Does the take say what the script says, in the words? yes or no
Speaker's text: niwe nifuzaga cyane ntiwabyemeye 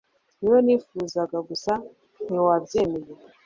no